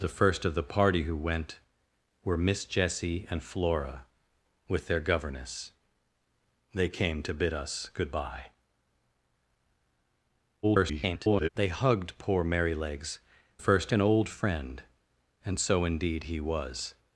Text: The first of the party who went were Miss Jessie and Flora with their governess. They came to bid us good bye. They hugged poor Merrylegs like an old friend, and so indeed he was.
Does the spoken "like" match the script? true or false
false